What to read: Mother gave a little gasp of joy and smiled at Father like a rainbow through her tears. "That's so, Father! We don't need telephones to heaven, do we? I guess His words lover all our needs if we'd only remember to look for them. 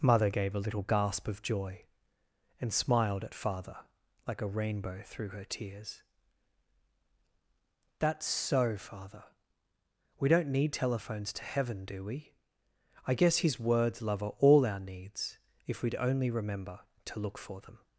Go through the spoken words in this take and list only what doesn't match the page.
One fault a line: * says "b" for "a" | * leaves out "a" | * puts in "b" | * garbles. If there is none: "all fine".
all fine